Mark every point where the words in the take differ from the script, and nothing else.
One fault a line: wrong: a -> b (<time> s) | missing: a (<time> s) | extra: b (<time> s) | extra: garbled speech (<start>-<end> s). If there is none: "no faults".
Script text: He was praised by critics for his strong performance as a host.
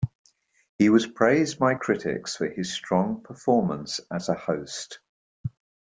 no faults